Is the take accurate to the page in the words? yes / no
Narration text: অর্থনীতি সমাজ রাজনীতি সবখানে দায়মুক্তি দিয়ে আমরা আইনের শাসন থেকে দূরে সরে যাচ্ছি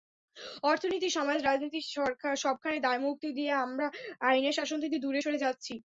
yes